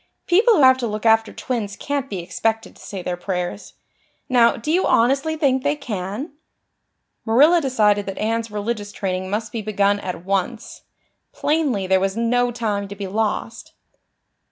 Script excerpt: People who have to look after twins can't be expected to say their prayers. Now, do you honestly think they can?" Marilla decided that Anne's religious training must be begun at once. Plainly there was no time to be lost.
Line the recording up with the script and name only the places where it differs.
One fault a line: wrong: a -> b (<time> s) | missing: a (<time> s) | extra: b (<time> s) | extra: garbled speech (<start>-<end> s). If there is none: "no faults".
no faults